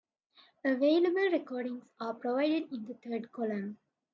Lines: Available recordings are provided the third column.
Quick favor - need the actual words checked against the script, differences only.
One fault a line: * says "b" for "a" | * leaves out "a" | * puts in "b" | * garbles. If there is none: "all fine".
* puts in "in"